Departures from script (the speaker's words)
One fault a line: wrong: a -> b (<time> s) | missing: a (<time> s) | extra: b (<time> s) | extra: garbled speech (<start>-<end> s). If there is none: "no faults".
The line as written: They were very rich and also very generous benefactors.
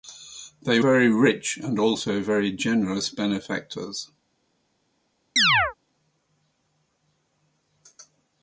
missing: were (0.8 s)